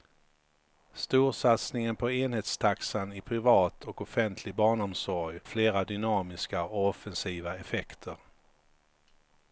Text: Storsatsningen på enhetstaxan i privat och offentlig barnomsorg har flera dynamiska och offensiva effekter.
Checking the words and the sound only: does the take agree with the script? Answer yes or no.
no